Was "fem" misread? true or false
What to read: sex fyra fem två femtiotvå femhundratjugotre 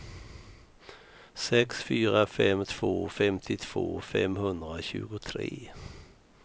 false